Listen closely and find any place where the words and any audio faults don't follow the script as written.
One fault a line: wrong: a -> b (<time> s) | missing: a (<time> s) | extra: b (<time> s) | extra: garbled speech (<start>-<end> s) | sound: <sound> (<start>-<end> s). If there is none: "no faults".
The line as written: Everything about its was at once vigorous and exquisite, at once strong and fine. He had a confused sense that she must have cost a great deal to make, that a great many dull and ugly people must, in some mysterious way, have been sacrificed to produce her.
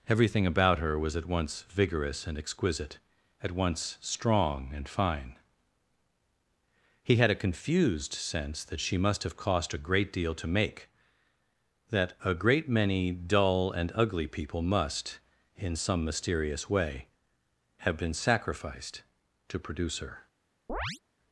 wrong: its -> her (0.8 s)
sound: chirp (20.7-21.0 s)